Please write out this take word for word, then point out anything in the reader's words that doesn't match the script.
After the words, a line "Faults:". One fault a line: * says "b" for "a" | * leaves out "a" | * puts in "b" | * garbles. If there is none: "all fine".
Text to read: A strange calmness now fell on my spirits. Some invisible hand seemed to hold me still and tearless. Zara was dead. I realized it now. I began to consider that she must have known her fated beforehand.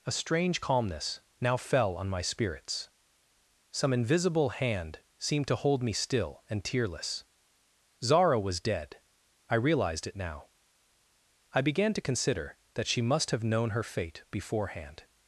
A strange calmness now fell on my spirits. Some invisible hand seemed to hold me still and tearless. Zara was dead. I realized it now. I began to consider that she must have known her fate beforehand.
Faults:
* says "fate" for "fated"